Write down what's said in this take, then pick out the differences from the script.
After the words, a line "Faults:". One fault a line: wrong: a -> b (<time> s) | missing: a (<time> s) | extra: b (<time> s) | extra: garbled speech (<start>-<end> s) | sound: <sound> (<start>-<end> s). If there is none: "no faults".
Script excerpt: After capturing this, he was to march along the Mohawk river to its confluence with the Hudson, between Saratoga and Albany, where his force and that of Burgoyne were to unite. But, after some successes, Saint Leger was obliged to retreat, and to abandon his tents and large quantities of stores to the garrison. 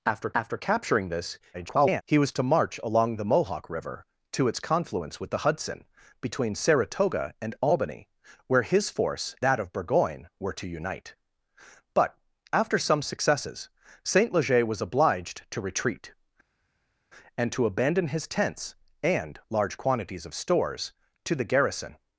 After after capturing this, [garbled] he was to march along the Mohawk river to its confluence with the Hudson, between Saratoga and Albany, where his force that of Burgoyne were to unite. But, after some successes, Saint Leger was obliged to retreat, and to abandon his tents and large quantities of stores to the garrison.
Faults:
extra: after (0.3 s)
extra: garbled speech (1.5-2.0 s)
missing: and (9.3 s)